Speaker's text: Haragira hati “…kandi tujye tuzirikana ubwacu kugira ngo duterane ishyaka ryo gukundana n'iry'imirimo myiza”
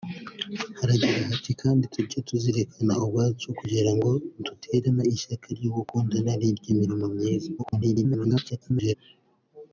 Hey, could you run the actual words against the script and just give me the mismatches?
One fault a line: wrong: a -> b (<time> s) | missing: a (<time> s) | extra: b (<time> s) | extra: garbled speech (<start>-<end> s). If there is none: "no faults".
extra: garbled speech (7.6-8.9 s)